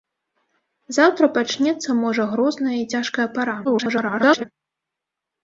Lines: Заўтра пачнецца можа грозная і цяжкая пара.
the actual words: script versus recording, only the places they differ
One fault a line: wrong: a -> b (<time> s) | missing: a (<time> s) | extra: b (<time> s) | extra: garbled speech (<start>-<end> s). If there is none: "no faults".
extra: garbled speech (3.6-4.4 s)